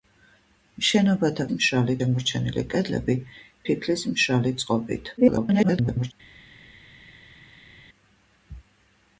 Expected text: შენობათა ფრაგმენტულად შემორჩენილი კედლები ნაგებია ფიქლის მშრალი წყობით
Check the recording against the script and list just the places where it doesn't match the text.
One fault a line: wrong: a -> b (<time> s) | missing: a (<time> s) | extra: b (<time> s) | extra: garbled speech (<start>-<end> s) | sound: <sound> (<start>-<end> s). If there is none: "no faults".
wrong: ფრაგმენტულად -> მშრალი (1.6 s)
missing: ნაგებია (3.2 s)
extra: garbled speech (5.2-6.1 s)